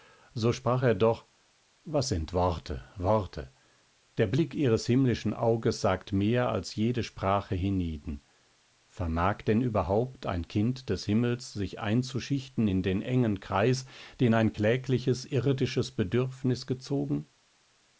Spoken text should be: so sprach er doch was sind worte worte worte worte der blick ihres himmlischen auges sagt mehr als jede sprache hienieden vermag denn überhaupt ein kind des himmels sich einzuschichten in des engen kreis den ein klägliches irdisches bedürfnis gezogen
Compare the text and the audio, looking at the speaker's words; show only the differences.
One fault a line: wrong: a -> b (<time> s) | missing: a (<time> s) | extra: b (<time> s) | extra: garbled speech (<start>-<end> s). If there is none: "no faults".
missing: worte worte (3.5 s)
wrong: des -> den (12.8 s)